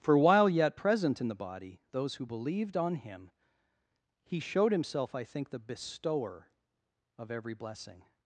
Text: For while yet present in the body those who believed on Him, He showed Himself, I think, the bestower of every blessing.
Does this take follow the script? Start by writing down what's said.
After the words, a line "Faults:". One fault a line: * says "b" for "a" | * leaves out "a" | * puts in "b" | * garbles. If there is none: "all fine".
For while yet present in the body those who believed on Him, He showed Himself, I think, the bestower of every blessing.
Faults:
all fine